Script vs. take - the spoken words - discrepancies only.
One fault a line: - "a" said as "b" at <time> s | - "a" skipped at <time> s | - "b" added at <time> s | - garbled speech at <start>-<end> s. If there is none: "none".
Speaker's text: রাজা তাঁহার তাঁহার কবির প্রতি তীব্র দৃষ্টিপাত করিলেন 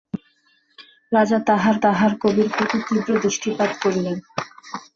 none